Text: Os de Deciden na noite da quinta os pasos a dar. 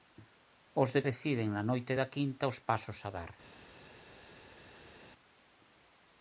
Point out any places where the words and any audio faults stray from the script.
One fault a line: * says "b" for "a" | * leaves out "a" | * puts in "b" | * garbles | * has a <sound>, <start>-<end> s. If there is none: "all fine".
all fine